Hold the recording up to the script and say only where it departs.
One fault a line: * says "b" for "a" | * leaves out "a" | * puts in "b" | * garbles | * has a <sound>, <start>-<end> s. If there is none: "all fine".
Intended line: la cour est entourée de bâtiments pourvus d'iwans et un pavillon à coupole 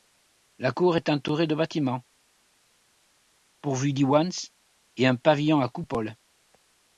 all fine